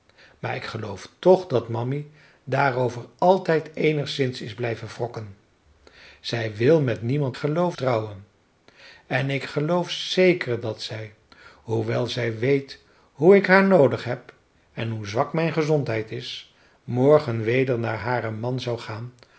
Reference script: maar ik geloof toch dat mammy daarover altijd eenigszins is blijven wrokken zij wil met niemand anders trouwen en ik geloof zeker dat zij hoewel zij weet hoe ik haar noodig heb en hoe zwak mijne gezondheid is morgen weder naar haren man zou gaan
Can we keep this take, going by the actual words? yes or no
no